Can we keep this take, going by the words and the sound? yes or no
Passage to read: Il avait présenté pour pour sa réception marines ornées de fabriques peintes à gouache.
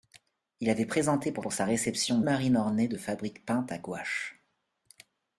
yes